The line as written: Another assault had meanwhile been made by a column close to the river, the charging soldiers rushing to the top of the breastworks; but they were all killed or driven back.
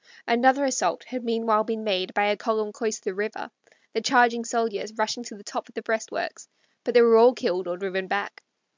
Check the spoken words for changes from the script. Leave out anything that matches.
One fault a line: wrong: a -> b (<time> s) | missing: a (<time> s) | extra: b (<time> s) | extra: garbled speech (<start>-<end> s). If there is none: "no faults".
no faults